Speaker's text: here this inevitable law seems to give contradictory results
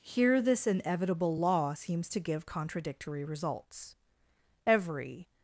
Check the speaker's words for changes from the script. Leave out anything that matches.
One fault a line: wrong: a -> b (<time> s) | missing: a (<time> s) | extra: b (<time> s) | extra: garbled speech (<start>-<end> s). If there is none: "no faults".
extra: every (4.7 s)